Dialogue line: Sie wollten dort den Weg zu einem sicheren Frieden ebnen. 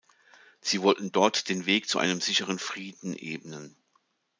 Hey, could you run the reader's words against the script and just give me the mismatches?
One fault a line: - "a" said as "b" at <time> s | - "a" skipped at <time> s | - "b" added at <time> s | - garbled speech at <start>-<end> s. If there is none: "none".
none